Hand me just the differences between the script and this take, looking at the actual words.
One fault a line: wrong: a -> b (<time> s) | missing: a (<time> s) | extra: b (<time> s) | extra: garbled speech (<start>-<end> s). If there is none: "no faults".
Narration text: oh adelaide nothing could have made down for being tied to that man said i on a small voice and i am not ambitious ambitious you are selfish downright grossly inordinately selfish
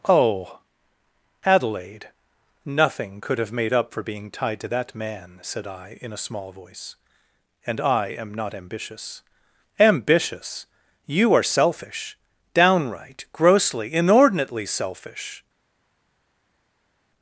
wrong: down -> up (3.7 s)
wrong: on -> in (6.0 s)